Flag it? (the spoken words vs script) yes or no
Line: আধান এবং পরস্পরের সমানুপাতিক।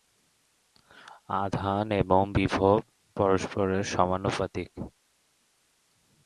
yes